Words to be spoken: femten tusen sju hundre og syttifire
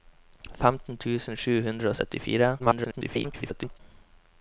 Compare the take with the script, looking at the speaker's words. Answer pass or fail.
fail